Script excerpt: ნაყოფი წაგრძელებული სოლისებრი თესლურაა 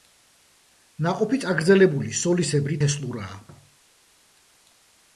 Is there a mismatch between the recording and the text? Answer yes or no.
no